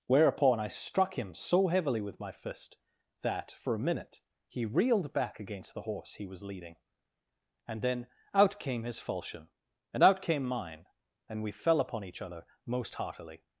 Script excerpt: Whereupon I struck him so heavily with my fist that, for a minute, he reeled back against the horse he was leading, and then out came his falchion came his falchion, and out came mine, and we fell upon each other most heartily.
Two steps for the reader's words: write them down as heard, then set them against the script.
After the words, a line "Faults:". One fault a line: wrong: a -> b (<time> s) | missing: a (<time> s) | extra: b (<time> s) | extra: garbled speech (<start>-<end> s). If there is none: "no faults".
Whereupon I struck him so heavily with my fist that, for a minute, he reeled back against the horse he was leading, and then out came his falchion, and out came mine, and we fell upon each other most heartily.
Faults:
missing: came his falchion (9.5 s)